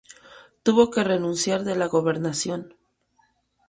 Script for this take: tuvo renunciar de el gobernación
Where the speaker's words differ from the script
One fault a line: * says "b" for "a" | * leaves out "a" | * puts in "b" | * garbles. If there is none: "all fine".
* puts in "que"
* says "la" for "el"